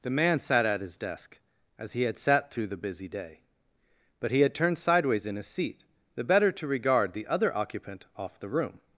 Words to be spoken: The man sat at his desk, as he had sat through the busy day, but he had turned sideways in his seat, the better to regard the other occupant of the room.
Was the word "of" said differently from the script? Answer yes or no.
yes